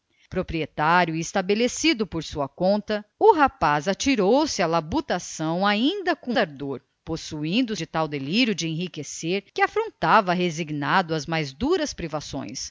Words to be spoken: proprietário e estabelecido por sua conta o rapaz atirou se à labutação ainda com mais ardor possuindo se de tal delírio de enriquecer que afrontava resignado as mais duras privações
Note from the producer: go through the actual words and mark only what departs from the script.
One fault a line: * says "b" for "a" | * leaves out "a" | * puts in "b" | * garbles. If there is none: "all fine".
* leaves out "mais"
* leaves out "se"